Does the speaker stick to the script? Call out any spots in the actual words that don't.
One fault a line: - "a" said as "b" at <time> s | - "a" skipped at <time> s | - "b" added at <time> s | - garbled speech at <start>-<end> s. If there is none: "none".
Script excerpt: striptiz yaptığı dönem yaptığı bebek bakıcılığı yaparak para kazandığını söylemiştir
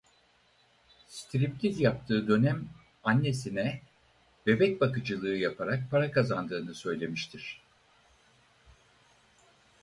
- "yaptığı" said as "annesine" at 3.0 s